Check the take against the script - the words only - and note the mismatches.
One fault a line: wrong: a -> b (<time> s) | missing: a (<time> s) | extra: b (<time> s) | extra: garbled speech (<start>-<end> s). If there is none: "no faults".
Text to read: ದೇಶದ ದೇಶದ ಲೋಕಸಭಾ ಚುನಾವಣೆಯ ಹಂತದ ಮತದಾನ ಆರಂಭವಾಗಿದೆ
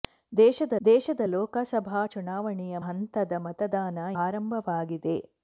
no faults